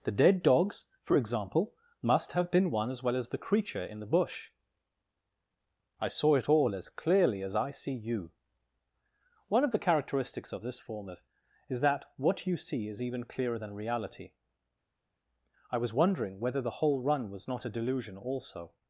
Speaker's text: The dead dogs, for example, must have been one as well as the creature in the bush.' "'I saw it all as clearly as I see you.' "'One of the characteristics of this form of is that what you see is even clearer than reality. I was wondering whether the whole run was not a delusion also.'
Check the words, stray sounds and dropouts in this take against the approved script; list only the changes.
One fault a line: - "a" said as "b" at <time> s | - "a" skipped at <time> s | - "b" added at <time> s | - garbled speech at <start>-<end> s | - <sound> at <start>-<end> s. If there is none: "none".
none